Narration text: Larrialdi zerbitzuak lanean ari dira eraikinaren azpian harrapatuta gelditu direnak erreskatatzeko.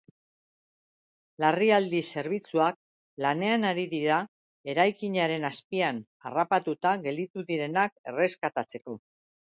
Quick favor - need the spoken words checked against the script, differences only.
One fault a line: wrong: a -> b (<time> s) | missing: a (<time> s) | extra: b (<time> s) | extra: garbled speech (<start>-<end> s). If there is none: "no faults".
no faults